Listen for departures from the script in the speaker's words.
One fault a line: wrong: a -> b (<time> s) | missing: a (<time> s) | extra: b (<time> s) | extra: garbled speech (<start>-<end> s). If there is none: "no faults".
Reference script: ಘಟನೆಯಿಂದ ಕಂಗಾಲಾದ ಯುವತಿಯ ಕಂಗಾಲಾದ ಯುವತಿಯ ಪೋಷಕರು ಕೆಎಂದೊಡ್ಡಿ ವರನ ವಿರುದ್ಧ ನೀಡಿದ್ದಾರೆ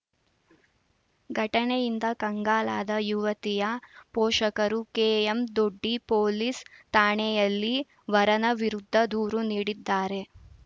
wrong: ಕಂಗಾಲಾದ ಯುವತಿಯ ಪೋಷಕರು ಕೆಎಂದೊಡ್ಡಿ -> ಪೋಷಕರು ಕೆಎಂದೊಡ್ಡಿ ಪೊಲೀಸ್ ಠಾಣೆಯಲ್ಲಿ (4.1 s)
extra: ದೂರು (9.1 s)